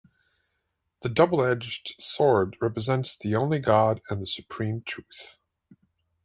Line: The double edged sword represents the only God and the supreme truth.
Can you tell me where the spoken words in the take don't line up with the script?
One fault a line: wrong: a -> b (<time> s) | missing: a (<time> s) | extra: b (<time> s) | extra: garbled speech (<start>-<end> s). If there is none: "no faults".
no faults